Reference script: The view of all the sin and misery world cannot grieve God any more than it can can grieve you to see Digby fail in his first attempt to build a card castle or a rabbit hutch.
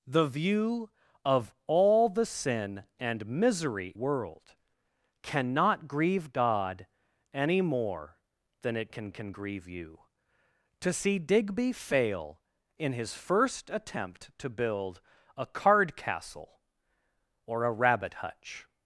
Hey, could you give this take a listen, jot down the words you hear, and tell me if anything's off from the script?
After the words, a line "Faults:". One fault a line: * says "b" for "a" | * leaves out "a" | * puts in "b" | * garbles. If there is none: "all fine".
The view of all the sin and misery world cannot grieve God any more than it can can grieve you to see Digby fail in his first attempt to build a card castle or a rabbit hutch.
Faults:
all fine